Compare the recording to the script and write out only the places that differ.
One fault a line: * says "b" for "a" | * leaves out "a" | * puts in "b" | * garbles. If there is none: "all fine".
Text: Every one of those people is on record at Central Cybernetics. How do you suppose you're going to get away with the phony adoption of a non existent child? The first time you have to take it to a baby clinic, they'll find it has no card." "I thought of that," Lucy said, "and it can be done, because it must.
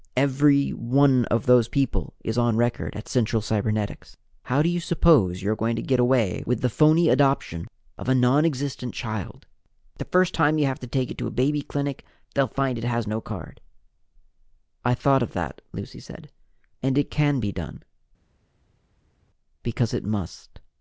all fine